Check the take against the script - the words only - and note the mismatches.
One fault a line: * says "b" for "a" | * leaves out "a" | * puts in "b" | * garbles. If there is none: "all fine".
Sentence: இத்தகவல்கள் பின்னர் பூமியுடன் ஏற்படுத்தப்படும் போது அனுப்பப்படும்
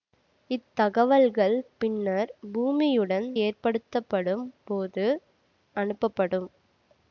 all fine